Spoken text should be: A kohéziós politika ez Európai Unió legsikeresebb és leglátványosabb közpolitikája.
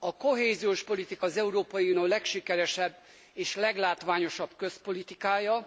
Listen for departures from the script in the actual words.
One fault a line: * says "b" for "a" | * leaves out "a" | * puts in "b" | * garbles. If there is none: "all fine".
* says "az" for "ez"